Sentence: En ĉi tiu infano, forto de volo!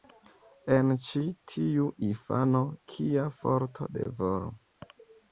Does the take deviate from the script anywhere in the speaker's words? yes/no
yes